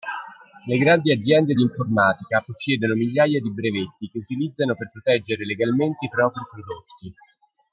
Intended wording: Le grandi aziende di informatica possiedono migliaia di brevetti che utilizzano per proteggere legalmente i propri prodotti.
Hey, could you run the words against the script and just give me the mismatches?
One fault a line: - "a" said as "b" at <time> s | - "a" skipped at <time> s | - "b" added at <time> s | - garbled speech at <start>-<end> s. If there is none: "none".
none